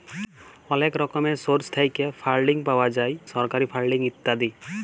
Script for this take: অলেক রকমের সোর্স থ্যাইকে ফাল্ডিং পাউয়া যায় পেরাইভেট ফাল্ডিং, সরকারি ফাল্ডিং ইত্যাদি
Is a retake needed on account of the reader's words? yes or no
yes